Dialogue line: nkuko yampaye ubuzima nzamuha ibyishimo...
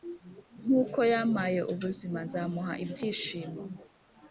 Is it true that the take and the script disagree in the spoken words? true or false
false